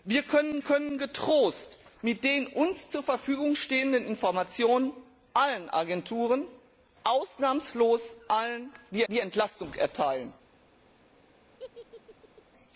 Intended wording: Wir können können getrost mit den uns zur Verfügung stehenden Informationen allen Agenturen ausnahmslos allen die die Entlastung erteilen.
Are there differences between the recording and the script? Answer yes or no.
no